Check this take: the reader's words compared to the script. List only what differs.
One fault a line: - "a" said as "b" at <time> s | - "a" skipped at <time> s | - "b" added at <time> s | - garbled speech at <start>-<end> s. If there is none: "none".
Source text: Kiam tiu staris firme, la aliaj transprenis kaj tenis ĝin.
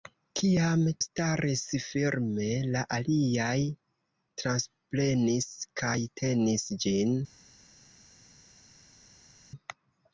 - "tiu" skipped at 0.8 s